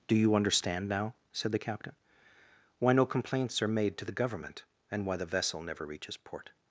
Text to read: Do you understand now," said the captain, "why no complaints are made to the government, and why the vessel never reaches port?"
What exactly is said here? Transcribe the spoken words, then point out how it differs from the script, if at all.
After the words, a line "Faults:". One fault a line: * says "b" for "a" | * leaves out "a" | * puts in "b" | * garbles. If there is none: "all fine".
Do you understand now," said the captain, "why no complaints are made to the government, and why the vessel never reaches port?"
Faults:
all fine